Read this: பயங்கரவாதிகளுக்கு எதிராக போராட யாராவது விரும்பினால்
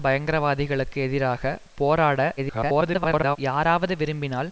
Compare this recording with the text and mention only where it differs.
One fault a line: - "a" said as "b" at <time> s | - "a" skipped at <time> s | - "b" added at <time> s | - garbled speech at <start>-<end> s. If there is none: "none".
- garbled speech at 2.4-3.4 s